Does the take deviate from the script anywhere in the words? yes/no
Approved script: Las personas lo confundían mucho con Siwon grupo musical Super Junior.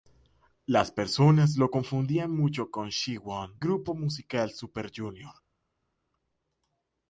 no